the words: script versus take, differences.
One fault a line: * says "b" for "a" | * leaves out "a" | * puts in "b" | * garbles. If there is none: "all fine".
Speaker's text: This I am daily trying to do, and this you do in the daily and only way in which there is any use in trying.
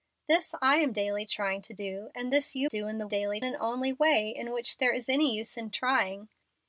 all fine